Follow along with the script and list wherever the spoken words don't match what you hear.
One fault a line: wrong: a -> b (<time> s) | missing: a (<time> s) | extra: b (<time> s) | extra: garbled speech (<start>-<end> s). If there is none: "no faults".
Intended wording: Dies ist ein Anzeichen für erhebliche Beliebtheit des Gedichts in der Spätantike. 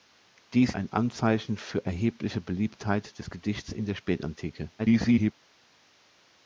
missing: ist (0.7 s)
extra: garbled speech (4.8-5.3 s)